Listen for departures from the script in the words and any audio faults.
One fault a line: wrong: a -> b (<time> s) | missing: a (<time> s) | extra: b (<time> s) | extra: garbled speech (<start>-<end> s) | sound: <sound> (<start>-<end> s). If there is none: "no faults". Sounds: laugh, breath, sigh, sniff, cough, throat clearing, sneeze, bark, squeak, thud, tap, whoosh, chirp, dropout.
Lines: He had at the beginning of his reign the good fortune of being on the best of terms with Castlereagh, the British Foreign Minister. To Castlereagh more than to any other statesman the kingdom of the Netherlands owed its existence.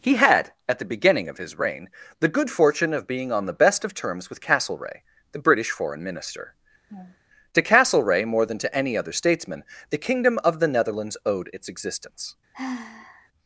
sound: laugh (6.9-7.2 s)
sound: sigh (12.5-13.3 s)